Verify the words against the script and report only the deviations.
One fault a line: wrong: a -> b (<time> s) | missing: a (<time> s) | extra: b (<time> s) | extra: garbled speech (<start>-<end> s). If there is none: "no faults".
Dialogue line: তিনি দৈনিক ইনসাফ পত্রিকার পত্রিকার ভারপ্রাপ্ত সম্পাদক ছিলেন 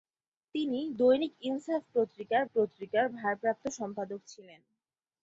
no faults